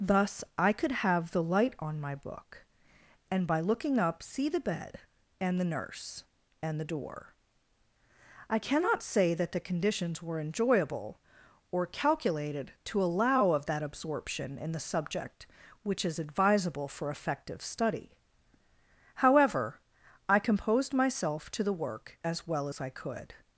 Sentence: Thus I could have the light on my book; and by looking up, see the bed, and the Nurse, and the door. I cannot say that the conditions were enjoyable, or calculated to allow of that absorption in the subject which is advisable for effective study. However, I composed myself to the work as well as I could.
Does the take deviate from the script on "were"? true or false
false